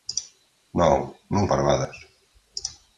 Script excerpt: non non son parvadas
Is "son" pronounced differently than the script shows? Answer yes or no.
yes